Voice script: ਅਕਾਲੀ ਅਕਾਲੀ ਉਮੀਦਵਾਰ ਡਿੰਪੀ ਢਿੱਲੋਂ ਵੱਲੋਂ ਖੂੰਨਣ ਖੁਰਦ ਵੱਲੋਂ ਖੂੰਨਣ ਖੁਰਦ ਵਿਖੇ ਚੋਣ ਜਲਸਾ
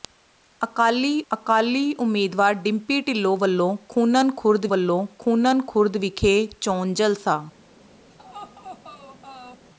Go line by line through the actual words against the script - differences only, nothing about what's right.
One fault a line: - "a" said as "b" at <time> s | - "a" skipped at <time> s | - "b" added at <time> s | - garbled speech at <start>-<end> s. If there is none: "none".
none